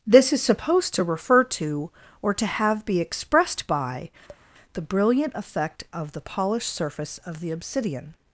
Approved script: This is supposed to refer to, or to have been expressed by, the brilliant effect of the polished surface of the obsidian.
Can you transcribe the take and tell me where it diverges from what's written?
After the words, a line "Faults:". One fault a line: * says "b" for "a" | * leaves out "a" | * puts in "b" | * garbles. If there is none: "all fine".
This is supposed to refer to, or to have be expressed by, the brilliant effect of the polished surface of the obsidian.
Faults:
* says "be" for "been"